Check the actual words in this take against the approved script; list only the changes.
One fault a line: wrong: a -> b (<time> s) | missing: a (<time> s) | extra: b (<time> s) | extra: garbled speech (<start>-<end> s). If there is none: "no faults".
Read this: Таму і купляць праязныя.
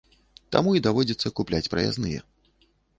extra: даводзіцца (0.9 s)